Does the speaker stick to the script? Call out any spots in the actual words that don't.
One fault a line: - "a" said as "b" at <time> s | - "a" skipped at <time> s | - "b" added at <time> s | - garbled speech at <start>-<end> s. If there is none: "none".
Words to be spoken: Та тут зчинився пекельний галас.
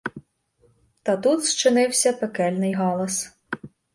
none